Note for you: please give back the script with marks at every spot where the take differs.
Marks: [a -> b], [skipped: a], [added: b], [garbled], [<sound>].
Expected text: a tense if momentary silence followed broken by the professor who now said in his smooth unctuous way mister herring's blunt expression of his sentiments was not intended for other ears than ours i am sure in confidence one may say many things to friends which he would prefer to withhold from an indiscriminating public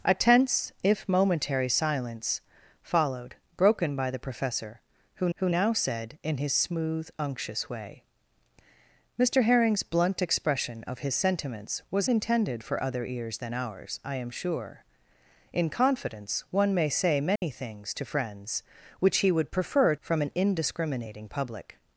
a tense if momentary silence followed broken by the professor who [added: who] now said in his smooth unctuous way mister herring's blunt expression of his sentiments was [skipped: not] intended for other ears than ours i am sure in confidence one may say many [dropout] things to friends which he would prefer [skipped: to withhold] from an indiscriminating public